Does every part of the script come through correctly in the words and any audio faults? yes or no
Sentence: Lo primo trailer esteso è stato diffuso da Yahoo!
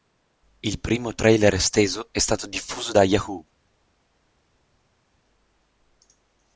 no